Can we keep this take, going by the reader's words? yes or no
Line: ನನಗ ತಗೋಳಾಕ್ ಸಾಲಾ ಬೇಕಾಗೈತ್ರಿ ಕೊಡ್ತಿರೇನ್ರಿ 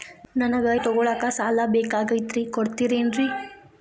yes